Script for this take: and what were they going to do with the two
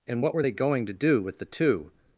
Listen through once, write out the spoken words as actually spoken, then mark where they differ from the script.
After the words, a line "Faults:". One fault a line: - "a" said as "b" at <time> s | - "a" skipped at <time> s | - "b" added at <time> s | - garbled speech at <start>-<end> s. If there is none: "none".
and what were they going to do with the two
Faults:
none